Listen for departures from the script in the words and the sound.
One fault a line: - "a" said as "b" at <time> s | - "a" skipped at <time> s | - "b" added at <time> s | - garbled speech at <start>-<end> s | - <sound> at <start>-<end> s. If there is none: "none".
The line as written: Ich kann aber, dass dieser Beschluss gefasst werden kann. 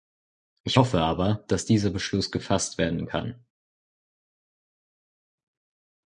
- "kann" said as "hoffe" at 0.8 s